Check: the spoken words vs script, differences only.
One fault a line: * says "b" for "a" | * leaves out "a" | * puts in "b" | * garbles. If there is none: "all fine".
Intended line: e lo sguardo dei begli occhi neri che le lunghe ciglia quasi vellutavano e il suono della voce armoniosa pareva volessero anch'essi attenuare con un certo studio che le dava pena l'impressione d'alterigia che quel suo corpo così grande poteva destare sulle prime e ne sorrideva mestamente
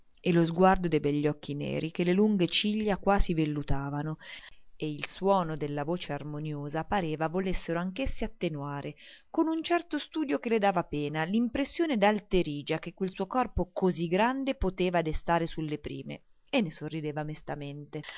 all fine